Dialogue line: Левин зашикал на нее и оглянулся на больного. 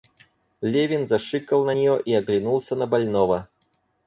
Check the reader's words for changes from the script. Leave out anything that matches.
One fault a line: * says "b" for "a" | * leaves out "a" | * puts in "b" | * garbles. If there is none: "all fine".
all fine